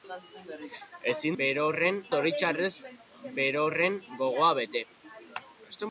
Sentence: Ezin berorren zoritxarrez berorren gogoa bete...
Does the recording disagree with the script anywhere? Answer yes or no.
no